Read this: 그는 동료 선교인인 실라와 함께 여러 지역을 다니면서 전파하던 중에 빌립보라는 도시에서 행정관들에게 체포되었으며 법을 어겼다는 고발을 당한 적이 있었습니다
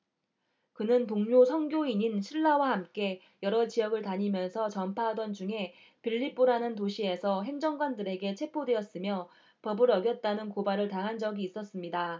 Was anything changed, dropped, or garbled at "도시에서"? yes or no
no